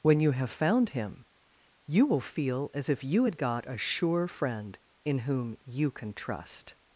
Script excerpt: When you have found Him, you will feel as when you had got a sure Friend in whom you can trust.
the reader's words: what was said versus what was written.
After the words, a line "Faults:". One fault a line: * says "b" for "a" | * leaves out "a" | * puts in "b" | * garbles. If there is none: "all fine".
When you have found Him, you will feel as if you had got a sure Friend in whom you can trust.
Faults:
* says "if" for "when"